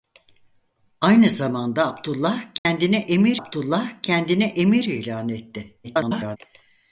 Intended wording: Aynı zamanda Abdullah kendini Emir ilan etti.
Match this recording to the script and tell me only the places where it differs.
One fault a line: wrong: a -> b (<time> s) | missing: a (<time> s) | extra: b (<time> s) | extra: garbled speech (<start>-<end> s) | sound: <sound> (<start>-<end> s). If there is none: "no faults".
sound: dropout (2.6-2.7 s)
extra: Abdullah kendini Emir (3.4 s)
extra: garbled speech (5.8-6.4 s)